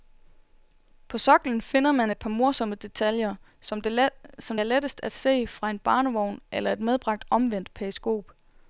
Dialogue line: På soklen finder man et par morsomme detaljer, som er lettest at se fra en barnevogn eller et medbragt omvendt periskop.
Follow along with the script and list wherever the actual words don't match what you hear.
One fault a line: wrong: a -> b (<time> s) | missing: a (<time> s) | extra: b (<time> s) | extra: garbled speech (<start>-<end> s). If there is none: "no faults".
no faults